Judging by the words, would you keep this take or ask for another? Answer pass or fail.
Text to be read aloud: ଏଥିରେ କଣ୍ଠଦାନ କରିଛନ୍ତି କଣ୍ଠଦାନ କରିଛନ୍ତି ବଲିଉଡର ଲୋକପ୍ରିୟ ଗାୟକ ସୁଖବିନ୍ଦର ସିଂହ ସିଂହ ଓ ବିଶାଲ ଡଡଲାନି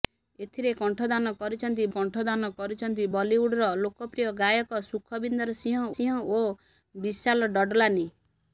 pass